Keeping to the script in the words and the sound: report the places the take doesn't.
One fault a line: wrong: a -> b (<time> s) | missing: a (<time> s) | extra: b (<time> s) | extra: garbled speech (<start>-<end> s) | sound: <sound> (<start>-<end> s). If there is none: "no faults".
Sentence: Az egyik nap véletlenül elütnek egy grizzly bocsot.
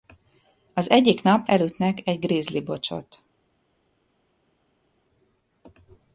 missing: véletlenül (1.5 s)